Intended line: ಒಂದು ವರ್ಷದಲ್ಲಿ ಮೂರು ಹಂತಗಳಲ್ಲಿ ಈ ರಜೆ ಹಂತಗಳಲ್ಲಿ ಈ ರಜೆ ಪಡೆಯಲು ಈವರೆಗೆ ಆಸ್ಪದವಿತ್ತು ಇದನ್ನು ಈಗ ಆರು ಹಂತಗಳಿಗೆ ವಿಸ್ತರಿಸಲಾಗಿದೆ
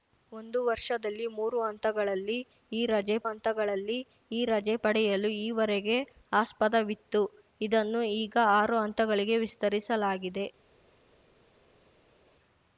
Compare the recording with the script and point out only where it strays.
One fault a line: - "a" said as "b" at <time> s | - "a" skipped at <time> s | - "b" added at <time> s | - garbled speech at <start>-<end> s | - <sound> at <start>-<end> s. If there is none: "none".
none